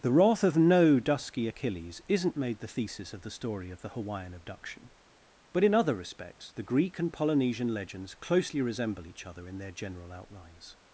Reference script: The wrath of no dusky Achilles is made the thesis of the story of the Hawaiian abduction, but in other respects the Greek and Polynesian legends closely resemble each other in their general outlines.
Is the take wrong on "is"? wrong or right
wrong